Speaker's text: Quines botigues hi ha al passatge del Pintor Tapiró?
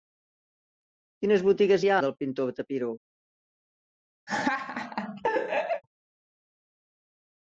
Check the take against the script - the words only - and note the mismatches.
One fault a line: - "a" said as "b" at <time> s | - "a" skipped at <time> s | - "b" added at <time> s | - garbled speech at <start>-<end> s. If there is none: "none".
- "al passatge" skipped at 2.0 s